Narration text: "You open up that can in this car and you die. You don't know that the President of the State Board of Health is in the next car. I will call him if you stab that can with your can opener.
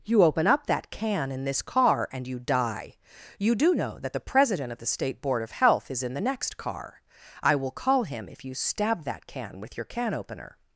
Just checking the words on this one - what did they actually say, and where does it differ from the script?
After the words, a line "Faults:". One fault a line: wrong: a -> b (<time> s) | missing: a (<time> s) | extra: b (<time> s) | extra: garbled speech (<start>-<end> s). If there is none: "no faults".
"You open up that can in this car and you die. You do know that the President of the State Board of Health is in the next car. I will call him if you stab that can with your can opener.
Faults:
wrong: don't -> do (3.5 s)